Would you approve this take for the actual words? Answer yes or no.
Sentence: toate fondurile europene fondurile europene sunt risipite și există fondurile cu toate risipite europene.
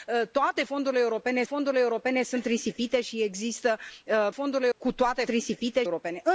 yes